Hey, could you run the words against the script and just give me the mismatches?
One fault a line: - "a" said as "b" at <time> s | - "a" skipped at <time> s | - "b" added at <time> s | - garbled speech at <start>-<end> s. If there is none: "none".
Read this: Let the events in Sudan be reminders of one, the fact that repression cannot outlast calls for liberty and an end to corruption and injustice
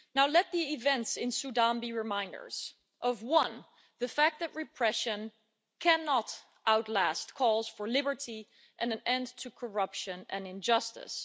none